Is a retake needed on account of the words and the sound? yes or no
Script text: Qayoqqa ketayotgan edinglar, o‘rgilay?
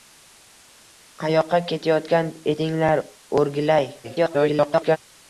yes